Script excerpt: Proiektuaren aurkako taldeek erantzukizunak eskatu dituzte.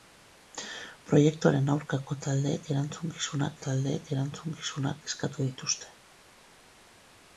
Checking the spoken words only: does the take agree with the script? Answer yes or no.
no